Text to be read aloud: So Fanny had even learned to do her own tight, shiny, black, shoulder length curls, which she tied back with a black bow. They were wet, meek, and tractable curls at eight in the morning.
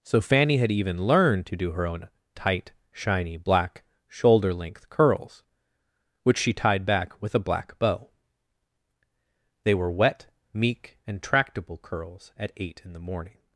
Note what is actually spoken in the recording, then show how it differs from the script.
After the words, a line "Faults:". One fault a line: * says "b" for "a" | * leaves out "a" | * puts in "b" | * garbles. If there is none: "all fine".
So Fanny had even learned to do her own tight, shiny, black, shoulder length curls, which she tied back with a black bow. They were wet, meek, and tractable curls at eight in the morning.
Faults:
all fine